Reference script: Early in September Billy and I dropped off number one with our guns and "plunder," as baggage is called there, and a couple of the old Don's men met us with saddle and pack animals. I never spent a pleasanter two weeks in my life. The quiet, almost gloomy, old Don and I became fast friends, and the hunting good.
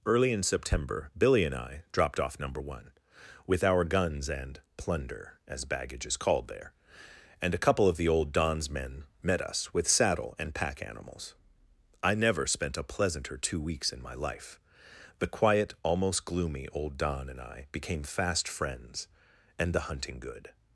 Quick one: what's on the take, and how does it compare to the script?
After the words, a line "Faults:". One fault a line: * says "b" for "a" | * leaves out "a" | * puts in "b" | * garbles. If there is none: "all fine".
Early in September Billy and I dropped off number one with our guns and "plunder," as baggage is called there, and a couple of the old Don's men met us with saddle and pack animals. I never spent a pleasanter two weeks in my life. The quiet, almost gloomy, old Don and I became fast friends, and the hunting good.
Faults:
all fine